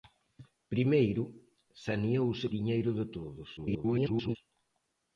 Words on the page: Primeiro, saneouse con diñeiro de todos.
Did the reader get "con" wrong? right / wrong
wrong